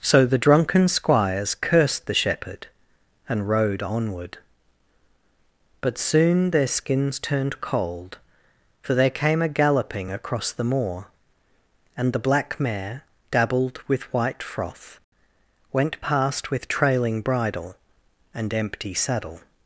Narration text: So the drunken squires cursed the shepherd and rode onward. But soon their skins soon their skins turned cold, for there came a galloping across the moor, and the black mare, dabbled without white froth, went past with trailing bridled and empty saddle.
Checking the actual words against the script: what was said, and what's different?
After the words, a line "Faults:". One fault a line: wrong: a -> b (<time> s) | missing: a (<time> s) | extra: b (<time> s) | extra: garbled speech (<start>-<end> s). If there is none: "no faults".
So the drunken squires cursed the shepherd and rode onward. But soon their skins turned cold, for there came a galloping across the moor, and the black mare, dabbled with white froth, went past with trailing bridle and empty saddle.
Faults:
missing: soon their skins (7.2 s)
wrong: without -> with (13.9 s)
wrong: bridled -> bridle (17.2 s)